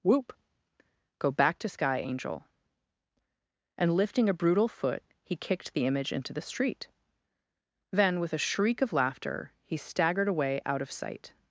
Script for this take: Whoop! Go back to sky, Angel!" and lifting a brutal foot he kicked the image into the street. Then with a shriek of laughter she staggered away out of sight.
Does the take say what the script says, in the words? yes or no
no